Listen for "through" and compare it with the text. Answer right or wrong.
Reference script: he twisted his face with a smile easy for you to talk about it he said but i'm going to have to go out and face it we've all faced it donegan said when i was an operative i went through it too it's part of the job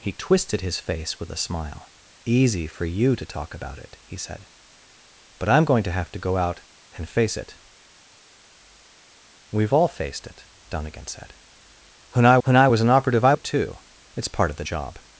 wrong